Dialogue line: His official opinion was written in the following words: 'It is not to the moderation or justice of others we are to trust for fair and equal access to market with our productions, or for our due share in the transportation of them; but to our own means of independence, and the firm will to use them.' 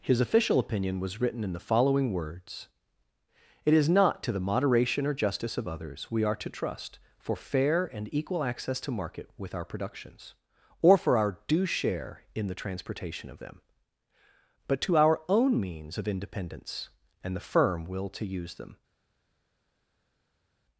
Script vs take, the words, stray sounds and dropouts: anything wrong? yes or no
no